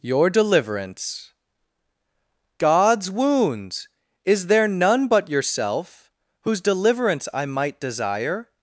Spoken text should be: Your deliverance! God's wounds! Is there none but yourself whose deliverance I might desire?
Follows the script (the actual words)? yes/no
yes